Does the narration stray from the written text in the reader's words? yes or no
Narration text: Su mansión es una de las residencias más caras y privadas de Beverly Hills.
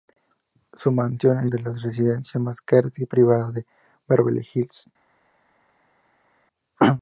yes